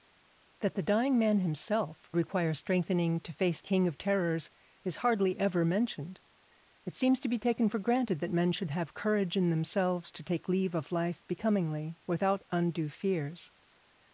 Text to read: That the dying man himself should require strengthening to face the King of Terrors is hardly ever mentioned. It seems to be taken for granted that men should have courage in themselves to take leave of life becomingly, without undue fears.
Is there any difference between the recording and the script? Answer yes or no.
yes